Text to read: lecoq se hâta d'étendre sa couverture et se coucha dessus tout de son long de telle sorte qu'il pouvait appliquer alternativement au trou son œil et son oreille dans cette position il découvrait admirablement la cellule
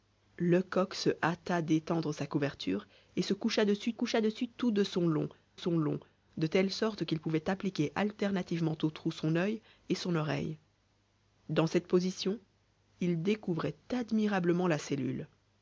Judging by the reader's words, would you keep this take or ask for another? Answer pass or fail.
fail